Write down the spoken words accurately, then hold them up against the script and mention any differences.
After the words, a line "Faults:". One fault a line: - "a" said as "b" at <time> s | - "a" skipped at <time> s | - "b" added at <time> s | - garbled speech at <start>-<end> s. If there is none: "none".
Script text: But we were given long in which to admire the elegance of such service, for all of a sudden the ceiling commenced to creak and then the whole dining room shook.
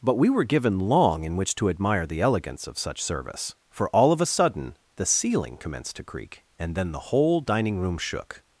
But we were given long in which to admire the elegance of such service, for all of a sudden the ceiling commenced to creak and then the whole dining room shook.
Faults:
none